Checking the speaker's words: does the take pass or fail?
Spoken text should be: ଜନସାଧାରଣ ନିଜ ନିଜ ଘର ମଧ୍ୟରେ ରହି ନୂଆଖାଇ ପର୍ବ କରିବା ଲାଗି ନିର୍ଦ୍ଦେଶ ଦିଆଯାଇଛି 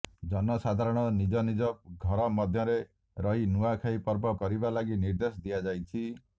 pass